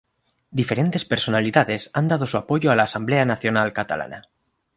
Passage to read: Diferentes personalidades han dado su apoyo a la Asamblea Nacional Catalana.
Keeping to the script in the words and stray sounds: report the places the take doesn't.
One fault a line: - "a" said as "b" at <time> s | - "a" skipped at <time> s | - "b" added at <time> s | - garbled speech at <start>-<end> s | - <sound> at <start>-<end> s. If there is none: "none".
none